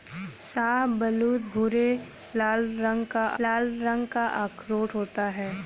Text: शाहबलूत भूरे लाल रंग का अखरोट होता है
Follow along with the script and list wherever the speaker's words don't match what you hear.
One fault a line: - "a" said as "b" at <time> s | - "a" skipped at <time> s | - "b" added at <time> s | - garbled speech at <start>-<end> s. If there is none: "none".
- "लाल रंग का" added at 3.4 s